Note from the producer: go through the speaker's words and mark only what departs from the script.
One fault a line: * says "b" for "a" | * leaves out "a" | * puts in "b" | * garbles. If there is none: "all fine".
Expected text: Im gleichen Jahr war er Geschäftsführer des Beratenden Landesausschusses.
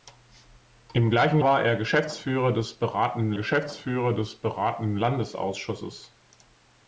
* leaves out "Jahr"
* puts in "Geschäftsführer des Beratenden"